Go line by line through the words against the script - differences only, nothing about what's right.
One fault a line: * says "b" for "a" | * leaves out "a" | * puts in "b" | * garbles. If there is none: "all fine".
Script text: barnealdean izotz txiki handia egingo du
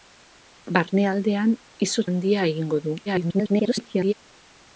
* leaves out "txiki"
* garbles